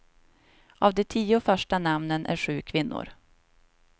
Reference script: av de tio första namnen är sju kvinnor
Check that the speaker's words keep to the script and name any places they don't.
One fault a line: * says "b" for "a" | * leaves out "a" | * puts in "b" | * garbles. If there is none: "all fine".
all fine